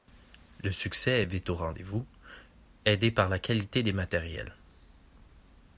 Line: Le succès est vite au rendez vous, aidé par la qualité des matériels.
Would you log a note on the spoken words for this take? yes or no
no